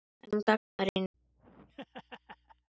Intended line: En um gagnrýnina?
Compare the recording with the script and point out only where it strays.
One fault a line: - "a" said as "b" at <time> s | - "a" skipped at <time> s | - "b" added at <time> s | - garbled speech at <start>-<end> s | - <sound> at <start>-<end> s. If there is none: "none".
- laugh at 1.1-2.7 s